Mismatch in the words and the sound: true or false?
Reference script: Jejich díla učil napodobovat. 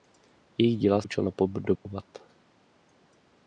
true